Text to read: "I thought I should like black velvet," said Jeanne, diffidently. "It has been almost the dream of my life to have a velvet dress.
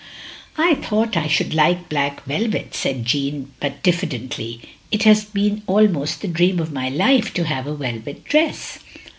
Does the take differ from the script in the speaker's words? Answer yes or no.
yes